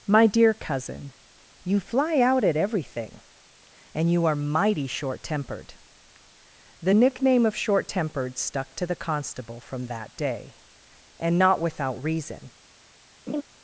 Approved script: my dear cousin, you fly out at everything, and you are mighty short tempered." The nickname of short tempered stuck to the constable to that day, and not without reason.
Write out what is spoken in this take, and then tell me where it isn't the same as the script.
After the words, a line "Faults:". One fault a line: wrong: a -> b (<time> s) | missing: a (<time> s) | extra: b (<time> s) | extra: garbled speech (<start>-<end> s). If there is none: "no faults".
my dear cousin, you fly out at everything, and you are mighty short tempered." The nickname of short tempered stuck to the constable from that day, and not without reason.
Faults:
wrong: to -> from (9.6 s)